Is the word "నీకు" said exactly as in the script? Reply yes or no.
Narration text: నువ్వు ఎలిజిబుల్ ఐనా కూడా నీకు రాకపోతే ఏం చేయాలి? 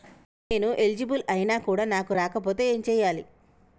no